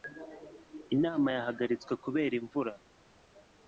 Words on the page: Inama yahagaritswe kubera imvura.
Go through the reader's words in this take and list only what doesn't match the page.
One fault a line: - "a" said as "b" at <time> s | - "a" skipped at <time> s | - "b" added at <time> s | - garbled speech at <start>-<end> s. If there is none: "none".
none